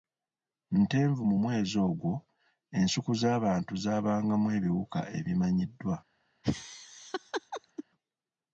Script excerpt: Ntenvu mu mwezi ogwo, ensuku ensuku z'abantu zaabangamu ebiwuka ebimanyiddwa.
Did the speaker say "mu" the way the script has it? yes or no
yes